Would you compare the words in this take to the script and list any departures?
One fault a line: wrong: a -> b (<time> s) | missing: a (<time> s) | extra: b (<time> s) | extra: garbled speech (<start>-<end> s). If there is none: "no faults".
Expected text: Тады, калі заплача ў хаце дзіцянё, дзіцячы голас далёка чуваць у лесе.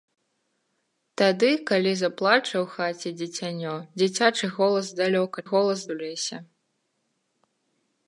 wrong: чуваць -> голас (5.5 s)